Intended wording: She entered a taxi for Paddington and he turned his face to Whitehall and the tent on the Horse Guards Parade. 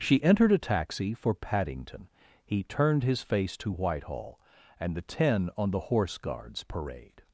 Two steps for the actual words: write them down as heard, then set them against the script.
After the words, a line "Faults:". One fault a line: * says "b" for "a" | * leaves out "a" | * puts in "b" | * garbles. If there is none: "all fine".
She entered a taxi for Paddington he turned his face to Whitehall and the ten on the Horse Guards Parade.
Faults:
* leaves out "and"
* says "ten" for "tent"